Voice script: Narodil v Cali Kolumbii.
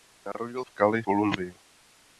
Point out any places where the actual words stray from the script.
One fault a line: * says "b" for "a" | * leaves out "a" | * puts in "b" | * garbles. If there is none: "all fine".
all fine